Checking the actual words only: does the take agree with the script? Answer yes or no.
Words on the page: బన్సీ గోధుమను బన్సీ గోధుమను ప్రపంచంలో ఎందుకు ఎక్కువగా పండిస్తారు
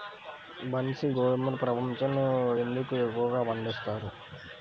no